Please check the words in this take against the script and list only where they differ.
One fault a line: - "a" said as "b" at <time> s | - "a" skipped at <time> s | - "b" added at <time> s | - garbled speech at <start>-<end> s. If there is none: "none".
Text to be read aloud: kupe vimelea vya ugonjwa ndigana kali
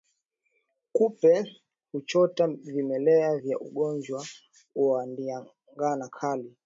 - "huchota" added at 1.9 s
- "wa" added at 4.7 s